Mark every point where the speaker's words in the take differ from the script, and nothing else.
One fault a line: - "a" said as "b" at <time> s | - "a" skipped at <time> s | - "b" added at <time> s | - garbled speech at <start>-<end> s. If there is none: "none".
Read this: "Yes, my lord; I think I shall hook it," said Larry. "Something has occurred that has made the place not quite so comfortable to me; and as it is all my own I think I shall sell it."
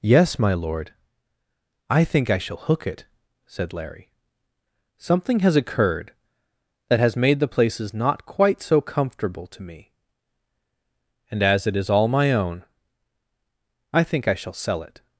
- "place" said as "places" at 7.5 s